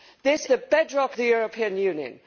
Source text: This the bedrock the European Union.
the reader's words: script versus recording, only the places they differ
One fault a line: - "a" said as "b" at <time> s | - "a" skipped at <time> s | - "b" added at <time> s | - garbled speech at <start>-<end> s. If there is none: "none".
none